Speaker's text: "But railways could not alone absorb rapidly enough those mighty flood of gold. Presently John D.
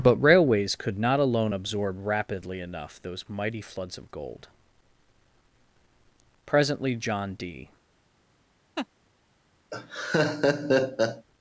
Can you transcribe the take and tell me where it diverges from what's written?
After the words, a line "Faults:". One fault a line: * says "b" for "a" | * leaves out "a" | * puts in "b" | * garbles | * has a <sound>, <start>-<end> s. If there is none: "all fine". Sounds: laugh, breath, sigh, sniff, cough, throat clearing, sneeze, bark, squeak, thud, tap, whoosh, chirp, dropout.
"But railways could not alone absorb rapidly enough those mighty floods of gold. Presently John D.
Faults:
* says "floods" for "flood"
* has a laugh, 8.8-8.9 s
* has a laugh, 9.7-11.3 s